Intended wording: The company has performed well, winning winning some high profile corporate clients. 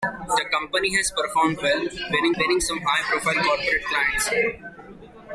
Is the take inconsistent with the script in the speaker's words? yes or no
no